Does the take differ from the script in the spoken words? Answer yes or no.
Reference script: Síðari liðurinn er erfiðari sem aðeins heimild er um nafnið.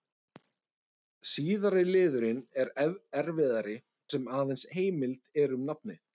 no